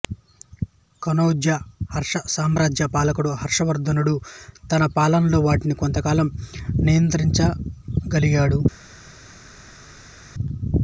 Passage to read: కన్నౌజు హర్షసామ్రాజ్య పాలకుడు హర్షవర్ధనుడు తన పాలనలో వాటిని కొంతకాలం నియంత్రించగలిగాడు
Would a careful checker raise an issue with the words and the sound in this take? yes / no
no